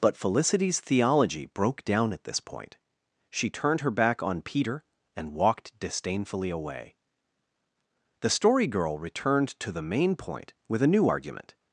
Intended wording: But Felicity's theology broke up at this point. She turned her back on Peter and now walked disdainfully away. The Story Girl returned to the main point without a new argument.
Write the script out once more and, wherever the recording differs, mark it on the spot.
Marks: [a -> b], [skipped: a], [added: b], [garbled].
But Felicity's theology broke [up -> down] at this point. She turned her back on Peter and [skipped: now] walked disdainfully away. The Story Girl returned to the main point [without -> with] a new argument.